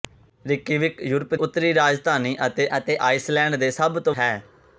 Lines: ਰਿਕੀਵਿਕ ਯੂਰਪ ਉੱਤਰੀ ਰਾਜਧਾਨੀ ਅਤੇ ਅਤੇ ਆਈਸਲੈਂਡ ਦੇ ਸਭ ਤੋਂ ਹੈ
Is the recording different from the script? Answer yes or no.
no